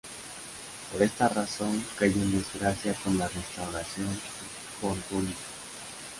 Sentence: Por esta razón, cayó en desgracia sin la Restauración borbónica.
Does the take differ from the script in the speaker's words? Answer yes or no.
yes